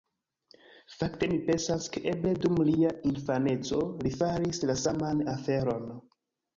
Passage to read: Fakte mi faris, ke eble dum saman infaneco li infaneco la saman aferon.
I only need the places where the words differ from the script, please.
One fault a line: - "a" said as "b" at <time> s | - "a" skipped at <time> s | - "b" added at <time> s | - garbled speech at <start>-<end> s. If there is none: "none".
- "faris" said as "pensas" at 1.5 s
- "saman" said as "lia" at 2.7 s
- "infaneco" said as "faris" at 4.2 s